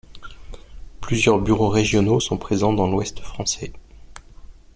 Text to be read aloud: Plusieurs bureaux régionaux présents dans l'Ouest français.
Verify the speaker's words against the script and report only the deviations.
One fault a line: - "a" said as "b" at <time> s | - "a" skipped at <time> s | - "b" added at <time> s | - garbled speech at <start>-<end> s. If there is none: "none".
- "sont" added at 2.2 s